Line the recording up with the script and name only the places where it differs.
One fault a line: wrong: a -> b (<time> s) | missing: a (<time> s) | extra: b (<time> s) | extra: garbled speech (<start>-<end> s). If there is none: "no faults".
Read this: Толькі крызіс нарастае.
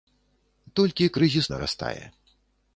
no faults